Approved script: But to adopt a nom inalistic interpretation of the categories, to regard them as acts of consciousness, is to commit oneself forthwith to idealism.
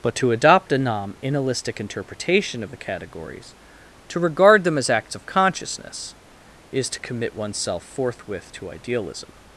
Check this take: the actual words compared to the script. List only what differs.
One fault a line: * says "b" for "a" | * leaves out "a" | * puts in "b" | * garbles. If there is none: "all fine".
all fine